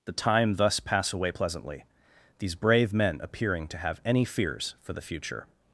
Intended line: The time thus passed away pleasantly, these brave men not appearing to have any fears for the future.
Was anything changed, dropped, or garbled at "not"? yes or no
yes